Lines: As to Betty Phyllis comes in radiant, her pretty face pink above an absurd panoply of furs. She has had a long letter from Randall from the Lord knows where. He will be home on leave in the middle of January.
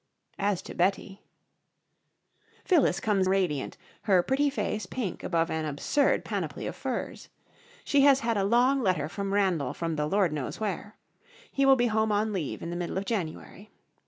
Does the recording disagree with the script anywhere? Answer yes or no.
yes